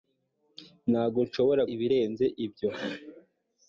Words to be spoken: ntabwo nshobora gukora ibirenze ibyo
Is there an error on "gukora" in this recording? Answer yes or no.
yes